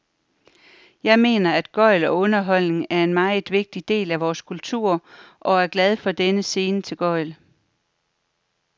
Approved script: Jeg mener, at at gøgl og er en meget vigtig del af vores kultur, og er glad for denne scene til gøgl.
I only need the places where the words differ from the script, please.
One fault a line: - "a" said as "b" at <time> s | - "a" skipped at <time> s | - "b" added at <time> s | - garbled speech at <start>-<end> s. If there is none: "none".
- "at" skipped at 1.7 s
- "underholdning" added at 2.2 s